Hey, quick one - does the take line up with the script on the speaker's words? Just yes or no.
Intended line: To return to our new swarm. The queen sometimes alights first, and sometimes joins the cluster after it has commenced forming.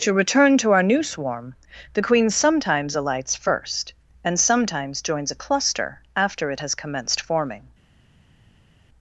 no